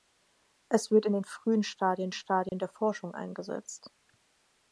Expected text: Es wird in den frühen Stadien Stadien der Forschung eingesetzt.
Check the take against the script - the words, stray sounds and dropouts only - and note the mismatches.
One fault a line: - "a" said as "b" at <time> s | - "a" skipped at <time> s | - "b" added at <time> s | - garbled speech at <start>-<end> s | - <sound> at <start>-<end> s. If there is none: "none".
- dropout at 2.5-2.5 s